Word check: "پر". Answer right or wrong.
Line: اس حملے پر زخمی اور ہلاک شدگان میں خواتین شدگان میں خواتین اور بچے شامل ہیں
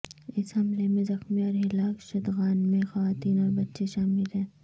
wrong